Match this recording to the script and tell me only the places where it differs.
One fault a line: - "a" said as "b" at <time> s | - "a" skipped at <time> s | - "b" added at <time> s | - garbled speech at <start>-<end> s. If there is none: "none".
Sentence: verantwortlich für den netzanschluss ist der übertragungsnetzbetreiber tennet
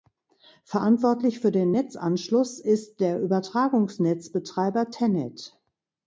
none